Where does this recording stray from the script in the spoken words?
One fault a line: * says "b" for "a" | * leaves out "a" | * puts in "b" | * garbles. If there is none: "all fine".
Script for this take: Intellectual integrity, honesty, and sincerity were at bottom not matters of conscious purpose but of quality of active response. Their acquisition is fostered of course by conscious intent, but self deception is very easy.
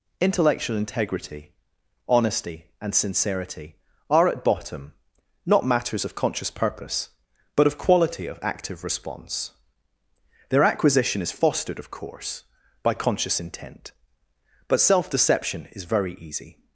* says "are" for "were"